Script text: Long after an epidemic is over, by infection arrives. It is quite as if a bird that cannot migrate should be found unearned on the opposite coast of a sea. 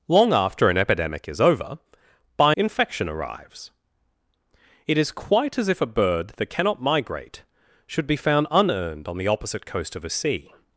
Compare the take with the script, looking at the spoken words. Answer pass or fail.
pass